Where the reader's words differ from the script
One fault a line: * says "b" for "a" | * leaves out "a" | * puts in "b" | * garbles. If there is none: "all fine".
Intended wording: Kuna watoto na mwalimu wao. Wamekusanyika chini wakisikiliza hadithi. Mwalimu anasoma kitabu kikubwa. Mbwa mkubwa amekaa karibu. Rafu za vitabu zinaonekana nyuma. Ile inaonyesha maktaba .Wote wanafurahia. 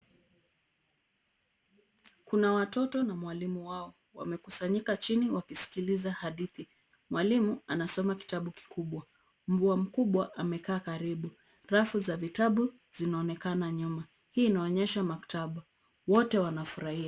* says "Hii" for "Ile"